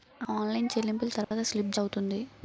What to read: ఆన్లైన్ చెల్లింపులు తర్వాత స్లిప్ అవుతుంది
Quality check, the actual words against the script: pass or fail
pass